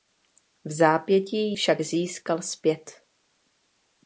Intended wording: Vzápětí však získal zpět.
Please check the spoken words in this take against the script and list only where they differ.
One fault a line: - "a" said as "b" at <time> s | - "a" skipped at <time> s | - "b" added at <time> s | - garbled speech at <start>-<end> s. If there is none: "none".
none